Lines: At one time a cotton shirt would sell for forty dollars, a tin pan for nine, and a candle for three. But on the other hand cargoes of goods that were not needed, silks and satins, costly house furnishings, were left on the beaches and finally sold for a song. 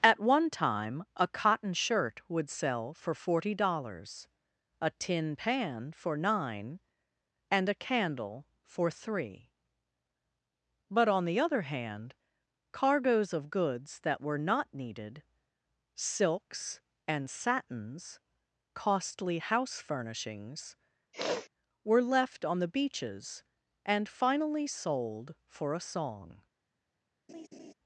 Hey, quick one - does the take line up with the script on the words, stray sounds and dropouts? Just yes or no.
no